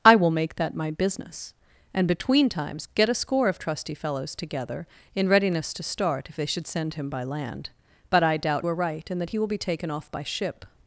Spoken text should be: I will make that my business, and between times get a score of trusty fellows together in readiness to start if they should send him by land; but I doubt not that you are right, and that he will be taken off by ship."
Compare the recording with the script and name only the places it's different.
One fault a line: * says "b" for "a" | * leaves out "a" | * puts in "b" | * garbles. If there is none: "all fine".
* leaves out "not that you"